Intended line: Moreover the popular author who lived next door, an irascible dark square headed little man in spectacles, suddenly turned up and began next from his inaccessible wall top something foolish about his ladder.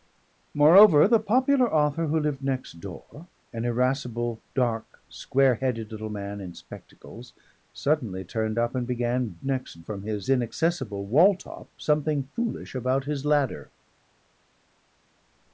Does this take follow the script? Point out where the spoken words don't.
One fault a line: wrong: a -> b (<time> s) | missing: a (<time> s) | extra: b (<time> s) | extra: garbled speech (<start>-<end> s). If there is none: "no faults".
no faults